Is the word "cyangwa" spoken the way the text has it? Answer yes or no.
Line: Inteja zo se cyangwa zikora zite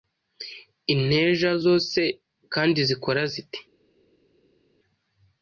no